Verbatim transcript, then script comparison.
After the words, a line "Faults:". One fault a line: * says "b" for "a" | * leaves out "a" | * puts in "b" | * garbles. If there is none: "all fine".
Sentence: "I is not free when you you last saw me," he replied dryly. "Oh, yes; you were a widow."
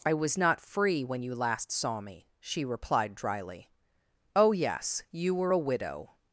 "I was not free when you last saw me," she replied dryly. "Oh, yes; you were a widow."
Faults:
* says "was" for "is"
* leaves out "you"
* says "she" for "he"